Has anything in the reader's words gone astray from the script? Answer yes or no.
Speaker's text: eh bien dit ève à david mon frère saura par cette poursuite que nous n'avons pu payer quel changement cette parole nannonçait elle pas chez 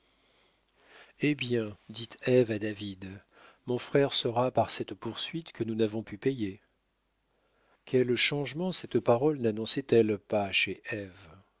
no